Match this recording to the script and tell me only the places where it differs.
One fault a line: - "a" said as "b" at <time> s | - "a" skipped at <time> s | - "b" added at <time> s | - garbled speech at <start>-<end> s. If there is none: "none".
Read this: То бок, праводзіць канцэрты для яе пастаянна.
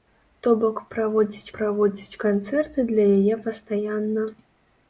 - "праводзіць" added at 1.6 s